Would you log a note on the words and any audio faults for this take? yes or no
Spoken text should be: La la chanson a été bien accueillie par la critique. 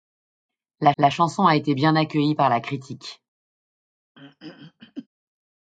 yes